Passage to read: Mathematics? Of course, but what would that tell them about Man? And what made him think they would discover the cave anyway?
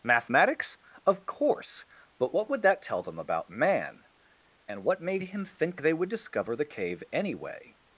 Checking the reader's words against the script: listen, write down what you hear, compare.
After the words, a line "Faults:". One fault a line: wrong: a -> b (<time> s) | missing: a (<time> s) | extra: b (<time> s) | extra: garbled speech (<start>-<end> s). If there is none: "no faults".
Mathematics? Of course, but what would that tell them about Man? And what made him think they would discover the cave anyway?
Faults:
no faults